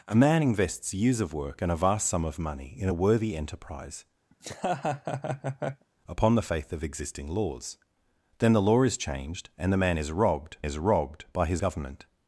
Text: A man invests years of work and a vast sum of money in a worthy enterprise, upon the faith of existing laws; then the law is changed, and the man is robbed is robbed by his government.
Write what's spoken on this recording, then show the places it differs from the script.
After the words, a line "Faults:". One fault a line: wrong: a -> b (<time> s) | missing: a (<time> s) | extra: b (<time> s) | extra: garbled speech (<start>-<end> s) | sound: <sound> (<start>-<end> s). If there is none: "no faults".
A man invests years of work and a vast sum of money in a worthy enterprise, upon the faith of existing laws; then the law is changed, and the man is robbed is robbed by his government.
Faults:
sound: laugh (4.3-5.9 s)